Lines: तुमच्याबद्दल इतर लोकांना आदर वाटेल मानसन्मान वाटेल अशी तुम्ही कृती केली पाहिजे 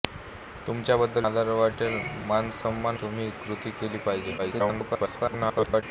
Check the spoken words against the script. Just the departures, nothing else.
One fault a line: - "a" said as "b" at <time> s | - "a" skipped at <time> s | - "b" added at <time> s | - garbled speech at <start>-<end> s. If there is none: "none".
- "इतर लोकांना" skipped at 1.3 s
- "वाटेल अशी" skipped at 3.0 s
- garbled speech at 4.4-5.8 s